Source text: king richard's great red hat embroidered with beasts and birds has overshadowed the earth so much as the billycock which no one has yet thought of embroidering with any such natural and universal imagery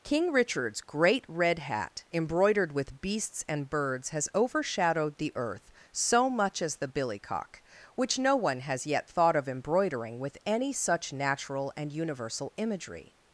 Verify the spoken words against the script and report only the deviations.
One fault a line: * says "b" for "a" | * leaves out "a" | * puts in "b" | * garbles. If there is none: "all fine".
all fine